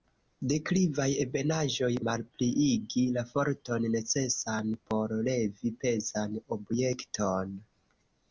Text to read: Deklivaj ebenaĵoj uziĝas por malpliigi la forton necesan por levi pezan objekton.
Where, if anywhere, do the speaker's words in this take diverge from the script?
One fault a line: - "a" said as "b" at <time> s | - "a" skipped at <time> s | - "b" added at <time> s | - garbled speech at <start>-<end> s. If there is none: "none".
- "uziĝas por" skipped at 1.9 s